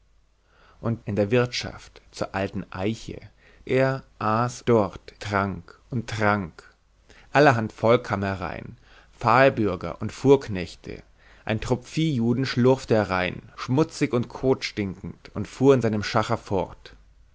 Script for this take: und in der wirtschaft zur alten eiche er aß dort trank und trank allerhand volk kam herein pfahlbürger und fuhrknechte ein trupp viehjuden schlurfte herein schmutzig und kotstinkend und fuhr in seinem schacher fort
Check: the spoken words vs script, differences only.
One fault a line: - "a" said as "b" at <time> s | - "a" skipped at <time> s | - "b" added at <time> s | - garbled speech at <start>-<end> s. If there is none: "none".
none